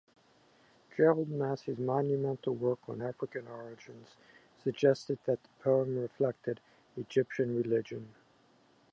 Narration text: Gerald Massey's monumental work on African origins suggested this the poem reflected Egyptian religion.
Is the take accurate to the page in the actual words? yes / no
no